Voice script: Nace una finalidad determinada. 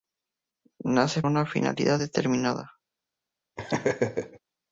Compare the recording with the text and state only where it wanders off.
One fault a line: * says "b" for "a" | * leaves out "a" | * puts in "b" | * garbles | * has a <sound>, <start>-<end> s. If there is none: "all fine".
* has a laugh, 3.6-4.4 s